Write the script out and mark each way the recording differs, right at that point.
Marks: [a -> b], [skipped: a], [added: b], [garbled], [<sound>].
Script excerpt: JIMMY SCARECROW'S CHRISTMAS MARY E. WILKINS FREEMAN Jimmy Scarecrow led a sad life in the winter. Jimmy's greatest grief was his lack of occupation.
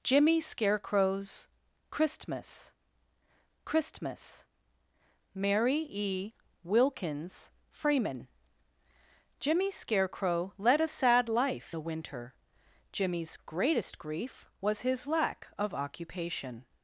JIMMY SCARECROW'S CHRISTMAS [added: CHRISTMAS] MARY E. WILKINS FREEMAN Jimmy Scarecrow led a sad life [skipped: in] the winter. Jimmy's greatest grief was his lack of occupation.